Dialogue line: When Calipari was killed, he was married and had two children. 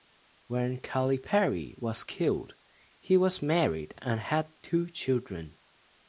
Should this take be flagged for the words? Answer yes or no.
no